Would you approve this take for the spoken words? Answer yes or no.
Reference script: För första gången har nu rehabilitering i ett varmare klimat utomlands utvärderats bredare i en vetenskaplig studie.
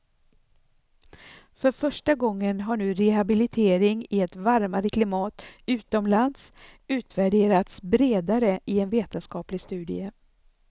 yes